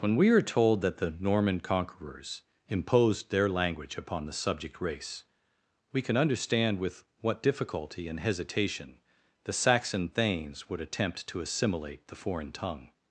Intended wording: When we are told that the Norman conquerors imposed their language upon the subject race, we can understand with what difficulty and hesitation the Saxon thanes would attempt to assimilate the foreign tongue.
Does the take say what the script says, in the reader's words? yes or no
yes